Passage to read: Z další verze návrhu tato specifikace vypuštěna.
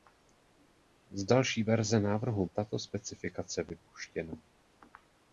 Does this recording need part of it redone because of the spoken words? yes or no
no